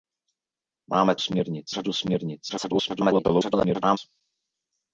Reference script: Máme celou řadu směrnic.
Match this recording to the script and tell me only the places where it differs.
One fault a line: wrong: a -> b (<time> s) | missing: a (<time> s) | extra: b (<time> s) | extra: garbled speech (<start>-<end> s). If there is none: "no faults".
wrong: celou -> směrnic (1.2 s)
extra: garbled speech (2.5-4.0 s)